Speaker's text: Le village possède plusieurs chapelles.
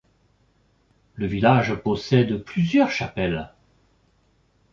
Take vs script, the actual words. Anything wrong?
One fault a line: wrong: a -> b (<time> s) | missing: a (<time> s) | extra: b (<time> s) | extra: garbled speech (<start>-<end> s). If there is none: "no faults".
no faults